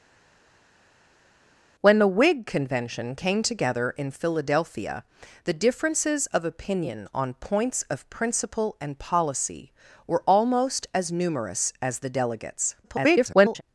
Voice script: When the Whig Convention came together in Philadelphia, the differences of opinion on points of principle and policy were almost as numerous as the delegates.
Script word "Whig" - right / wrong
right